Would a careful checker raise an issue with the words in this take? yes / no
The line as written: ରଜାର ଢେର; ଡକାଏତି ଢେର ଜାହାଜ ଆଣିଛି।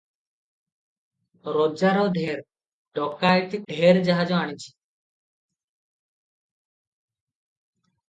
no